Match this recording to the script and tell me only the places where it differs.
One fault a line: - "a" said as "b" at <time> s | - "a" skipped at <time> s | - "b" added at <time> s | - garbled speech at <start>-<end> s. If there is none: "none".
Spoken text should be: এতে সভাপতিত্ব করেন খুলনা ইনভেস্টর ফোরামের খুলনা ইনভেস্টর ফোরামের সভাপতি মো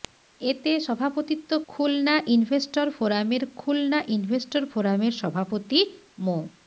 - "করেন" skipped at 1.5 s